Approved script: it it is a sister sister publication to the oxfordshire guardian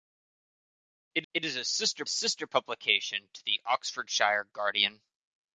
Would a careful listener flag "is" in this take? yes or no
no